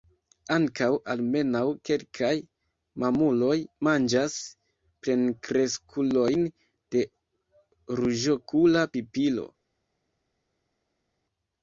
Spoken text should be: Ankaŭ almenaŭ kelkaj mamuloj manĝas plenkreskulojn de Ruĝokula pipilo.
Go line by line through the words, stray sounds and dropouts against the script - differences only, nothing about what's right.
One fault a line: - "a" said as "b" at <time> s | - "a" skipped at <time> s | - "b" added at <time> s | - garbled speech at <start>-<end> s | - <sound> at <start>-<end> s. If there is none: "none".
none